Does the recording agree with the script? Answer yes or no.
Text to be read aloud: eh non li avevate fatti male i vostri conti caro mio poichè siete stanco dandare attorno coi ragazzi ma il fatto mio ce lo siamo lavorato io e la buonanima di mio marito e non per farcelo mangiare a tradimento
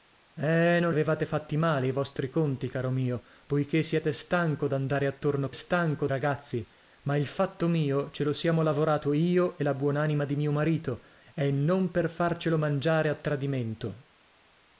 no